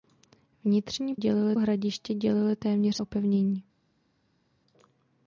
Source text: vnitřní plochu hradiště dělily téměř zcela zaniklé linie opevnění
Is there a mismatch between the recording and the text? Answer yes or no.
yes